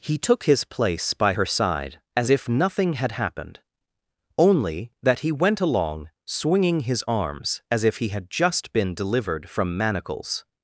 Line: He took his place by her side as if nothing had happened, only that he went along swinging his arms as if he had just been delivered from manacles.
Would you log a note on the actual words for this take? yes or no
no